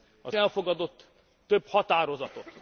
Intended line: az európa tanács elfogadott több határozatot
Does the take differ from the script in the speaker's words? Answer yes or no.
yes